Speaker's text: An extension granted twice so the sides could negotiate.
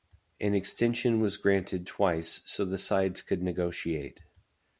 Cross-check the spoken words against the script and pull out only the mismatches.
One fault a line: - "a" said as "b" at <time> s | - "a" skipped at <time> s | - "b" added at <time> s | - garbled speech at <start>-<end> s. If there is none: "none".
- "was" added at 1.2 s